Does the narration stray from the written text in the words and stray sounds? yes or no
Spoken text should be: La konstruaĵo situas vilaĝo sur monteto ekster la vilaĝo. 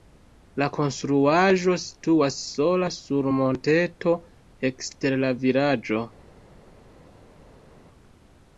yes